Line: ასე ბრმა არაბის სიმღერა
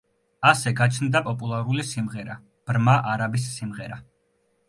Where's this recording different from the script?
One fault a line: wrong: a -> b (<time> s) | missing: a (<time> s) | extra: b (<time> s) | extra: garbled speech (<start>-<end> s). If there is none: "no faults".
extra: გაჩნდა პოპულარული სიმღერა (0.8 s)